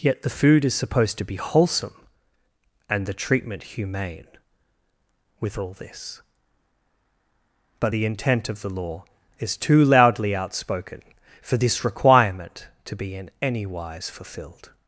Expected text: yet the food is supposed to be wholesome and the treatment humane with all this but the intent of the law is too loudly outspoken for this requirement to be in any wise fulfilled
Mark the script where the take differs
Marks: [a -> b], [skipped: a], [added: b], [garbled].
yet the food is supposed to be wholesome and the treatment humane with all this but the intent of the law is too loudly outspoken for this requirement to be in any wise fulfilled